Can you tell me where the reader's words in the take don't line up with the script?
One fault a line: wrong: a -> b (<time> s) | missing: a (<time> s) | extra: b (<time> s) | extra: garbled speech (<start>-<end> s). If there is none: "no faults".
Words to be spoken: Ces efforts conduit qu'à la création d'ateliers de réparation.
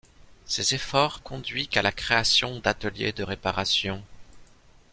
no faults